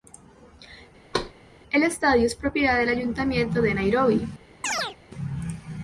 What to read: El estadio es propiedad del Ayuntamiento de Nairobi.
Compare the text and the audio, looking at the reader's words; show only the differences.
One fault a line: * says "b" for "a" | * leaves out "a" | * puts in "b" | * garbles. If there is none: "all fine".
all fine